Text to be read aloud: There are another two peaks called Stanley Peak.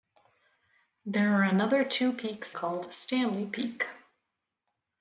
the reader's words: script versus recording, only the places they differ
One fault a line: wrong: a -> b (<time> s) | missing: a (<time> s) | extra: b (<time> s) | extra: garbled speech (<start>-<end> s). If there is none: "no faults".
no faults